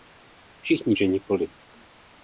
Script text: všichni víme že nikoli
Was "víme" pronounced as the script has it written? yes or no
no